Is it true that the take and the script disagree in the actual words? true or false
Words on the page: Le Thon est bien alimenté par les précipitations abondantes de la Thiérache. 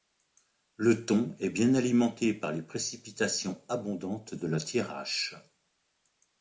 false